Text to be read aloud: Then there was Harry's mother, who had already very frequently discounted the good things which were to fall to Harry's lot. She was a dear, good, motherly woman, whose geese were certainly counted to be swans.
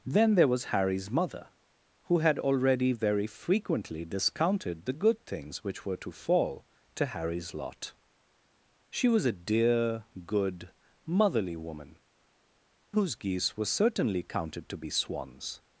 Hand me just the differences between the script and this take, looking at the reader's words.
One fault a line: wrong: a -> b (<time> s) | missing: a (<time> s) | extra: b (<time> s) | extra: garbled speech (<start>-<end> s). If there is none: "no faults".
no faults